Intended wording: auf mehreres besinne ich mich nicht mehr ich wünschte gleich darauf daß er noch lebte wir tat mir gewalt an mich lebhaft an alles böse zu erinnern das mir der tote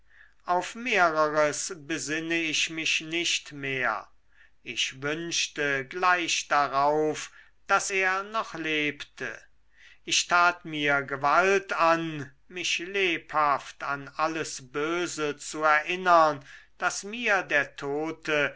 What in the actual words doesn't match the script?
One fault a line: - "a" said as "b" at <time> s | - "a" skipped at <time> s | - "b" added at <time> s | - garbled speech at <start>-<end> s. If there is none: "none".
- "wir" said as "ich" at 10.0 s